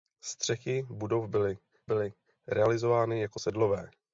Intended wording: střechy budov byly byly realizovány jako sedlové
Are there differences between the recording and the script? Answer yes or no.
no